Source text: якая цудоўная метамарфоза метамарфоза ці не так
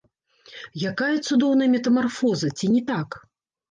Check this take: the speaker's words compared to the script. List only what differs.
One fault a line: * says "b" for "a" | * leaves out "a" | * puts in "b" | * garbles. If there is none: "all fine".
* leaves out "метамарфоза"